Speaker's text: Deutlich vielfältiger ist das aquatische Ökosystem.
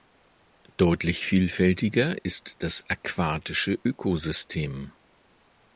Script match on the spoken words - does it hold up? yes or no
yes